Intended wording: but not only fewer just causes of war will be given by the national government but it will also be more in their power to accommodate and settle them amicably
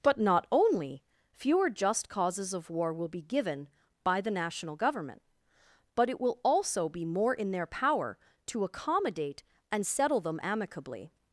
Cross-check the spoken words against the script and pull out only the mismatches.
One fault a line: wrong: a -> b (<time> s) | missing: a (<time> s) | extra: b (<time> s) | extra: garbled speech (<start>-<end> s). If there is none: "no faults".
no faults